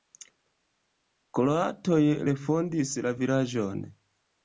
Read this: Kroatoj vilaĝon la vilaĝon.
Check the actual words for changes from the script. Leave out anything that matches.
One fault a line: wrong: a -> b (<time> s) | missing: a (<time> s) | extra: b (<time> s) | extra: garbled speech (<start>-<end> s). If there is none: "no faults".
wrong: vilaĝon -> refondis (2.3 s)